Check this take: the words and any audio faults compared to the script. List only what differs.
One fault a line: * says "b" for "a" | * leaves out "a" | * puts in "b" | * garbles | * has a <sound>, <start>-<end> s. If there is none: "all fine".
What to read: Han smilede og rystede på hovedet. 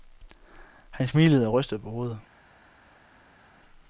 all fine